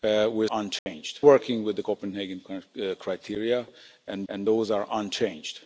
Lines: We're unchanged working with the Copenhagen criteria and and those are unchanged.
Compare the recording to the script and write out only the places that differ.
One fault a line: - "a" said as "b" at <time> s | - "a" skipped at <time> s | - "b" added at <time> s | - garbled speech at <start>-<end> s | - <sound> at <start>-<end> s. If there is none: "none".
- dropout at 0.8-0.9 s